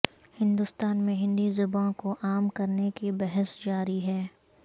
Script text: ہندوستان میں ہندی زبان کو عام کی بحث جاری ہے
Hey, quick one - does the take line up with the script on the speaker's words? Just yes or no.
no